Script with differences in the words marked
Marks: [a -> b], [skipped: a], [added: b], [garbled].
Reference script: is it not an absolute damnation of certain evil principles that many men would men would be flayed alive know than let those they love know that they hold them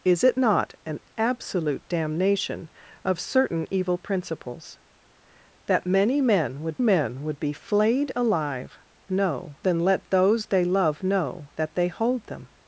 is it not an absolute damnation of certain evil principles that many men would men would be flayed alive know than let those they love know that they hold them